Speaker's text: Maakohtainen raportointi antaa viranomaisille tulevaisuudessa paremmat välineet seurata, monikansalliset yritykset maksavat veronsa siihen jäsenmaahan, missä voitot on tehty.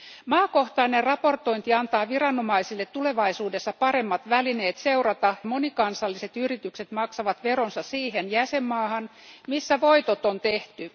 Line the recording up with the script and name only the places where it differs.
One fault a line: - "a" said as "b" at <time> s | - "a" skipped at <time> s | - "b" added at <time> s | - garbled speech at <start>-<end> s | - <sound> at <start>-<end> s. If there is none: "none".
none